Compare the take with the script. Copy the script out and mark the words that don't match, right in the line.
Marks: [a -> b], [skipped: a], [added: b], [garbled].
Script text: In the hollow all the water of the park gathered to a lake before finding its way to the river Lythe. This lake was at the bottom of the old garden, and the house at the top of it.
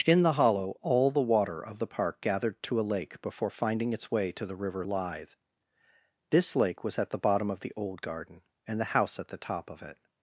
In the hollow all the water of the park gathered to a lake before finding its way to the river Lythe. This lake was at the bottom of the old garden, and the house at the top of it.